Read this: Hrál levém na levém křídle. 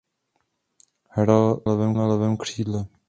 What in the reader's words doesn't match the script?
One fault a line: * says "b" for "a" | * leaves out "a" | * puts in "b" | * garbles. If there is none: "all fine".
all fine